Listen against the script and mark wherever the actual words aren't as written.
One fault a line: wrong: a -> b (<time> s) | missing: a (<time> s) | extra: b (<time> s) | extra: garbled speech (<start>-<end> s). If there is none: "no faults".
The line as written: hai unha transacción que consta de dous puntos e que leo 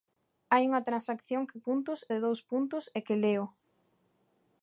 wrong: consta -> puntos (1.7 s)